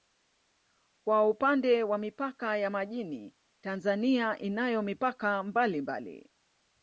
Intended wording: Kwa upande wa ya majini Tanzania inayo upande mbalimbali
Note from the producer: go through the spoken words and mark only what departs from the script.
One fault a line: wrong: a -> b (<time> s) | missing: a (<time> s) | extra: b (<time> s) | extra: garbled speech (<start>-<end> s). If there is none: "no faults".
extra: mipaka (2.0 s)
wrong: upande -> mipaka (4.8 s)